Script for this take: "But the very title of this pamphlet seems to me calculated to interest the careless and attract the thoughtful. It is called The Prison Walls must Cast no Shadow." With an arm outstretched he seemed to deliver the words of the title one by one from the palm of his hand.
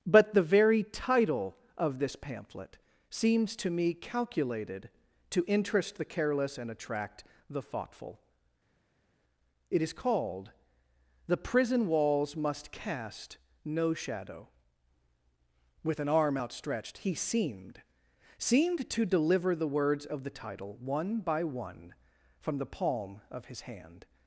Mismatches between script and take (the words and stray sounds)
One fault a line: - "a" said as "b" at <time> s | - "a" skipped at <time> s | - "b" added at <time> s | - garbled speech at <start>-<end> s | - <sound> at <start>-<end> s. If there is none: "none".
- "seemed" added at 18.4 s